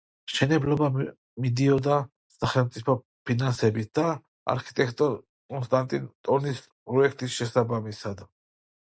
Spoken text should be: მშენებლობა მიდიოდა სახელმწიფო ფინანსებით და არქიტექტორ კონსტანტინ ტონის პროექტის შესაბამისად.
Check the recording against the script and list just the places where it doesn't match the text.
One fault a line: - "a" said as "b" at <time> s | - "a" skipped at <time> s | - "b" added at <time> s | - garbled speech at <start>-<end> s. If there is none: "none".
none